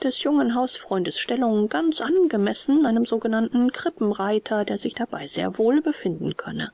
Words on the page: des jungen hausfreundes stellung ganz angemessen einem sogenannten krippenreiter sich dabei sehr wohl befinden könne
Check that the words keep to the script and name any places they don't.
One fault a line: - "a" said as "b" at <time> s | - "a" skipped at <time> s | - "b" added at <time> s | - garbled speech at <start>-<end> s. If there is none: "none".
- "der" added at 4.6 s